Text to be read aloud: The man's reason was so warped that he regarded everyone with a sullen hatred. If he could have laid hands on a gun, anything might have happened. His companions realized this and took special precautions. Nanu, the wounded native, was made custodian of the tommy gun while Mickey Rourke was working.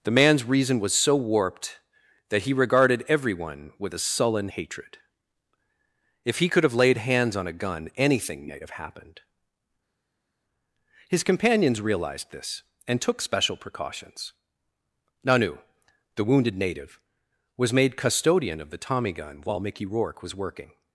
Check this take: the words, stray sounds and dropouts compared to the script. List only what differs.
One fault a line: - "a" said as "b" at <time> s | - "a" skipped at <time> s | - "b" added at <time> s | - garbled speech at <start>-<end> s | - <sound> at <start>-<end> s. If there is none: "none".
none